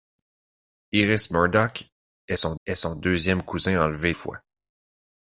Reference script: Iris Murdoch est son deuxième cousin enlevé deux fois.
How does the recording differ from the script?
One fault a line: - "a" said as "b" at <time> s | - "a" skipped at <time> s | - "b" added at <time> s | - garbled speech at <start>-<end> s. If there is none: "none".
- "est son" added at 2.7 s
- "deux" skipped at 4.1 s